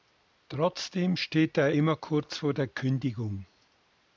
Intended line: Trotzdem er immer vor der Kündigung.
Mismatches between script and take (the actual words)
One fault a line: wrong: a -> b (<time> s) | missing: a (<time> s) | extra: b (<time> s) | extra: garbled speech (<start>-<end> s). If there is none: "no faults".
extra: steht (1.1 s)
extra: kurz (1.9 s)